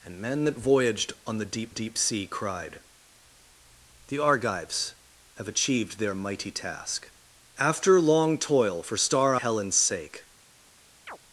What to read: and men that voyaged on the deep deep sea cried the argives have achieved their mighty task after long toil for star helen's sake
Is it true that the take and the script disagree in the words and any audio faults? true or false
true